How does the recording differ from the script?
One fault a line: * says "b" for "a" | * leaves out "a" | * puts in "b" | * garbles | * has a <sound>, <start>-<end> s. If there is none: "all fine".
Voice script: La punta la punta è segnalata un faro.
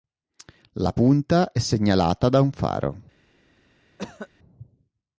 * leaves out "la punta"
* puts in "da"
* has a cough, 4.0-4.3 s